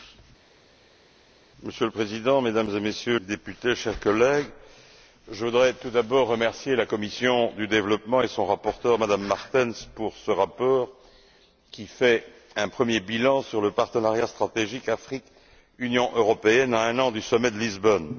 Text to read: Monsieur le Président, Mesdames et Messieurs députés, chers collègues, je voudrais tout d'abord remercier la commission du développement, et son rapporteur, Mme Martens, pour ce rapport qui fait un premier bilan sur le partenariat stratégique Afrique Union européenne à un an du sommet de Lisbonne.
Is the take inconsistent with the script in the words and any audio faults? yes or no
no